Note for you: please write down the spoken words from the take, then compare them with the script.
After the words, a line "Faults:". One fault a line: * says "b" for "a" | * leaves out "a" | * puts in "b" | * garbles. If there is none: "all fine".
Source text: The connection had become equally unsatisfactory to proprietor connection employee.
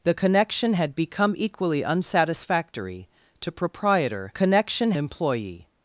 The connection had become equally unsatisfactory to proprietor connection employee.
Faults:
all fine